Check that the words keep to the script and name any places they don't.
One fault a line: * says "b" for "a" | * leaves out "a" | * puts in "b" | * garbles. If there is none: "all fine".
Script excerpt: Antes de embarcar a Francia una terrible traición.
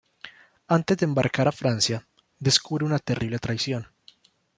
* puts in "descubre"